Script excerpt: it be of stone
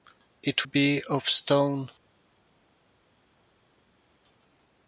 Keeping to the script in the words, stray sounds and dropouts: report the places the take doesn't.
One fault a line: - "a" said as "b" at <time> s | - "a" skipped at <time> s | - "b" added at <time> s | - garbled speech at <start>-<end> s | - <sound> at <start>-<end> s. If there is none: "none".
none